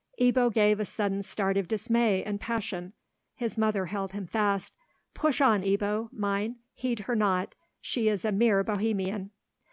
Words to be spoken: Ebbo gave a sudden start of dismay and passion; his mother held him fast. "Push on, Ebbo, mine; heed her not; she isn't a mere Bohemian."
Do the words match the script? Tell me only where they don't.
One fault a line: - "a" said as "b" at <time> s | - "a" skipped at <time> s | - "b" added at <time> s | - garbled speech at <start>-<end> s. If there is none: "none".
- "isn't" said as "is" at 8.1 s